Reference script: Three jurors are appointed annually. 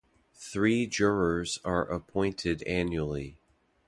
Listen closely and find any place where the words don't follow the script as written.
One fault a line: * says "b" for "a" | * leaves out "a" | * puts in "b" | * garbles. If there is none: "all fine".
all fine